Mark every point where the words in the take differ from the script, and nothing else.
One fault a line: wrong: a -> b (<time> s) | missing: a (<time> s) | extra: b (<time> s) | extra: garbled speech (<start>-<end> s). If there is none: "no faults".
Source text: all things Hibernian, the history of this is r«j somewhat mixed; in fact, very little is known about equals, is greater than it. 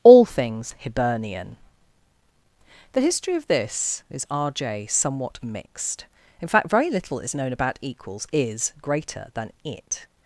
no faults